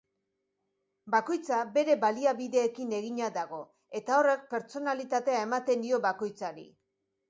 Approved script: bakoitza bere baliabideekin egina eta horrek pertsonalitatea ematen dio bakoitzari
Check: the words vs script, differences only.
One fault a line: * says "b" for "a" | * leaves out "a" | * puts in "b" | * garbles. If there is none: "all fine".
* puts in "dago"